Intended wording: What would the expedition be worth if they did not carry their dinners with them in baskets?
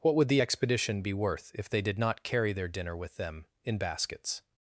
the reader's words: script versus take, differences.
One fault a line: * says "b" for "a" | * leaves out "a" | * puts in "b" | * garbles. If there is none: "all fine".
* says "dinner" for "dinners"